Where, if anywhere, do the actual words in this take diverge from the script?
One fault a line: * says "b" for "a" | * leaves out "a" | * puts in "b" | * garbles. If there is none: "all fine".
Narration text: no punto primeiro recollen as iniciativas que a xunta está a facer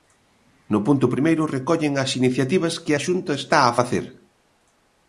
all fine